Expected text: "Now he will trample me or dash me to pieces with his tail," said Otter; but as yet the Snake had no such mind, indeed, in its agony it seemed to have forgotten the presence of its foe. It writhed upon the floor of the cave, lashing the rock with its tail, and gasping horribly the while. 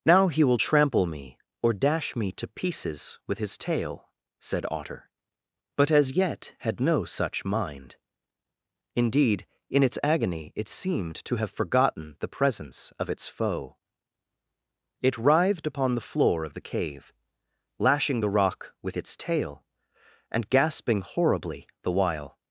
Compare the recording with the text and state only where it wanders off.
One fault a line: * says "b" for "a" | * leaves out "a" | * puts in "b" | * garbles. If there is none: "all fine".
* leaves out "the Snake"